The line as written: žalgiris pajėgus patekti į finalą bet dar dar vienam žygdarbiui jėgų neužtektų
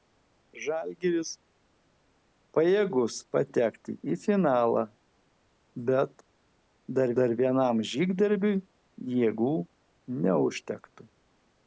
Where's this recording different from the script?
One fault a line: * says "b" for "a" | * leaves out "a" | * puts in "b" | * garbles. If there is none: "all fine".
all fine